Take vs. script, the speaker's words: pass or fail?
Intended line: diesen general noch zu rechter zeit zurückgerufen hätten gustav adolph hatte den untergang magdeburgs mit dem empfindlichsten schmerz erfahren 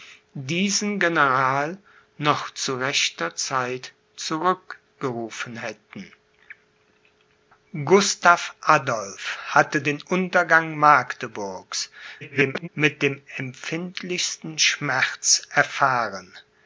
fail